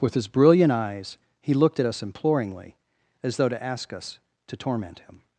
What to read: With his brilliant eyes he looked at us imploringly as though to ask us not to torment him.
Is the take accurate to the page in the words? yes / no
no